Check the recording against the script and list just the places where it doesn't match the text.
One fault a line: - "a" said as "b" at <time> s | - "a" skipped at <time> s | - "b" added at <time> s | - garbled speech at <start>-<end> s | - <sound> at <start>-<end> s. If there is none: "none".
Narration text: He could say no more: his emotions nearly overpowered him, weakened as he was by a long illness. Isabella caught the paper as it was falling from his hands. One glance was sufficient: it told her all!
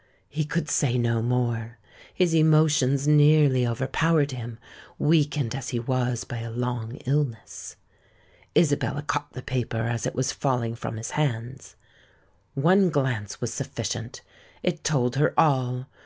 none